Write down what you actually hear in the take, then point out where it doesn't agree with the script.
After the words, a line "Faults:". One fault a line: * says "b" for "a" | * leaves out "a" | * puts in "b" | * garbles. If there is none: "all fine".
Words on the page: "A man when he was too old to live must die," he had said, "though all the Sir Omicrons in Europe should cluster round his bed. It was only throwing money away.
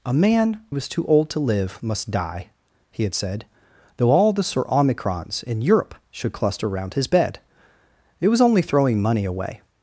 "A man was too old to live must die," he had said, "though all the Sir Omicrons in Europe should cluster round his bed. It was only throwing money away.
Faults:
* leaves out "when he"